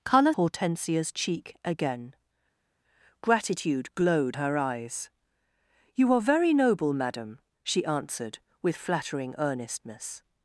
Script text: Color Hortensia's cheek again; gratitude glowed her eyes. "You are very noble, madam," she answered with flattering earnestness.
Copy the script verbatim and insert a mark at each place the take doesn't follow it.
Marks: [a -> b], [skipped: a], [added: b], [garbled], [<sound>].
Color Hortensia's cheek again; gratitude glowed her eyes. "You are very noble, madam," she answered with flattering earnestness.